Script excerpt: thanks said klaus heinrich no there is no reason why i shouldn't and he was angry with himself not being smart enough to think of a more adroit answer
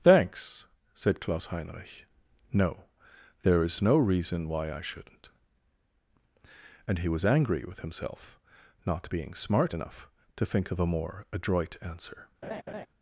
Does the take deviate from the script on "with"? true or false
false